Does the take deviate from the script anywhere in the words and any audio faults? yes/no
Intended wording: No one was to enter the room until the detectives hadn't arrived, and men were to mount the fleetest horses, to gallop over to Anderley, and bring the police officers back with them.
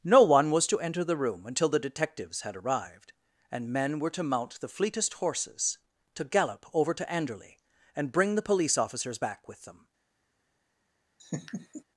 yes